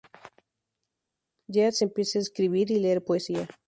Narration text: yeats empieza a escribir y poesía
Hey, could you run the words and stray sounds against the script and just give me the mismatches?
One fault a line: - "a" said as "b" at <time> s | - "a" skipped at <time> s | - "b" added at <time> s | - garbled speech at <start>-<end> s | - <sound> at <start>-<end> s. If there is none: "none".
- "leer" added at 2.8 s